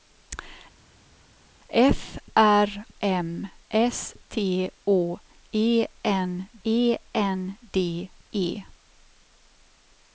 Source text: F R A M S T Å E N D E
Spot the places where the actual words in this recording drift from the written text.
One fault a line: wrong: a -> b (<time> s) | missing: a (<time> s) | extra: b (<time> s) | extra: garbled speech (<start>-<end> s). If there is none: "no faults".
missing: A (2.7 s)
extra: E N (6.6 s)